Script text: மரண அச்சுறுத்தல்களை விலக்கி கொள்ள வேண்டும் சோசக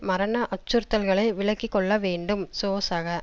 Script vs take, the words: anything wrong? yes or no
no